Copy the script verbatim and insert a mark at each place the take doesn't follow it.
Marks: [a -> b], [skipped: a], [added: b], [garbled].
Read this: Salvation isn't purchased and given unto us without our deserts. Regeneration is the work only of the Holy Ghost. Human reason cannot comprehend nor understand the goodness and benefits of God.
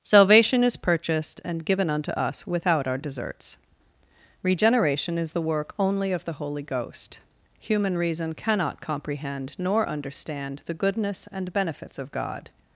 Salvation [isn't -> is] purchased and given unto us without our deserts. Regeneration is the work only of the Holy Ghost. Human reason cannot comprehend nor understand the goodness and benefits of God.